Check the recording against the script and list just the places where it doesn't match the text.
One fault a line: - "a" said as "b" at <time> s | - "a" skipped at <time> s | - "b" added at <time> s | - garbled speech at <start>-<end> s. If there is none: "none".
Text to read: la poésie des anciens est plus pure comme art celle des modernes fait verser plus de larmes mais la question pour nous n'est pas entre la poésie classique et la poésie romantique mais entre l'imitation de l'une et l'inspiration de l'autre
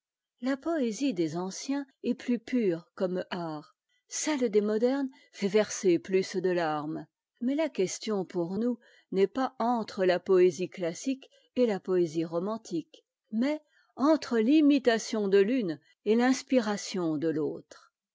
none